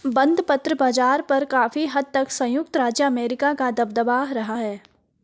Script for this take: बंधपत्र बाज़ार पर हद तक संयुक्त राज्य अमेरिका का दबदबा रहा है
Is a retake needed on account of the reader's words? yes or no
yes